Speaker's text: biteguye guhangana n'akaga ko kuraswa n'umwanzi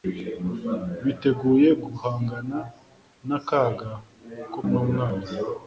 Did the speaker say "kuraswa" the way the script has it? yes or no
no